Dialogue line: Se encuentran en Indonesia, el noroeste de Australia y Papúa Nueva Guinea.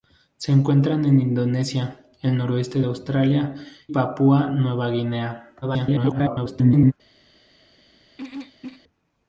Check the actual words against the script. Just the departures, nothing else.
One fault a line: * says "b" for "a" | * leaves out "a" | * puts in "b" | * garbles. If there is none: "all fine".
* leaves out "y"
* garbles